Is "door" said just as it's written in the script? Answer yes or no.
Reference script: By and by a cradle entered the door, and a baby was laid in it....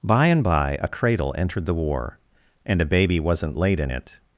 no